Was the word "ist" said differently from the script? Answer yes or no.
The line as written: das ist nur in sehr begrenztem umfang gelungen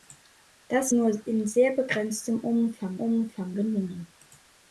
yes